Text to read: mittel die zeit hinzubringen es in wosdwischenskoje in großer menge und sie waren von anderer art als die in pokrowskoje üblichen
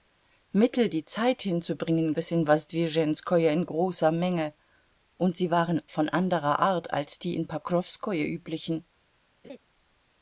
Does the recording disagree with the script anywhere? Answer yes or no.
no